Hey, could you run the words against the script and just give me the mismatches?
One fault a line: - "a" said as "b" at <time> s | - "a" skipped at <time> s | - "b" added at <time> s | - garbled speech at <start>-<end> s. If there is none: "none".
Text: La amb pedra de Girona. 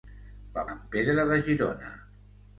none